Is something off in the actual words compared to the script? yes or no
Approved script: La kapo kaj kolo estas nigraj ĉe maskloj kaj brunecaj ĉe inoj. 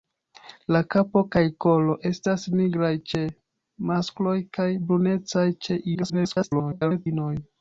yes